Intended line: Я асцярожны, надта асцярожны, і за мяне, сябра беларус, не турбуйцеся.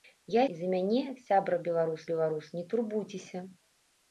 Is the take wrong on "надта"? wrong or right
wrong